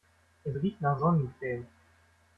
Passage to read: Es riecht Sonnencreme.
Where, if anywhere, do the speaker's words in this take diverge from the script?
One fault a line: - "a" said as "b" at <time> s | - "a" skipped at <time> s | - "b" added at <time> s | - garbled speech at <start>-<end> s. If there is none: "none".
- "nach" added at 0.8 s